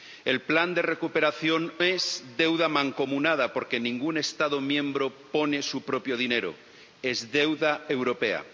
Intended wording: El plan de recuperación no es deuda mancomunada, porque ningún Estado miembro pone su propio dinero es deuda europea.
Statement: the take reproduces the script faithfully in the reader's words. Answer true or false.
false